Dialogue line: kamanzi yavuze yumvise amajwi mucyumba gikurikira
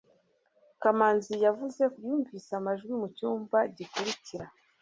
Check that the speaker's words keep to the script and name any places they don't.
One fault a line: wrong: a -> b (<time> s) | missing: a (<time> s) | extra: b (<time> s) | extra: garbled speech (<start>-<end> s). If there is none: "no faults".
no faults